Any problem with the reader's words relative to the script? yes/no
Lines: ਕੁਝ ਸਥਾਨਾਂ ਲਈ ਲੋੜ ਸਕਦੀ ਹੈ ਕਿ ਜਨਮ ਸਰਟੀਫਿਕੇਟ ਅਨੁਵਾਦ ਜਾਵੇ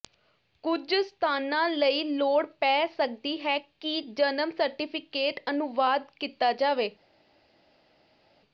yes